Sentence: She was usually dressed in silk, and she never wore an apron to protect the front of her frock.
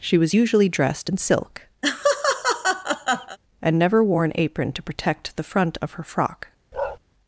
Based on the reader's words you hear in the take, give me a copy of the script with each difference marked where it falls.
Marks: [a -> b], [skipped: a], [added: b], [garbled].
She was usually dressed in silk, and [skipped: she] never wore an apron to protect the front of her frock.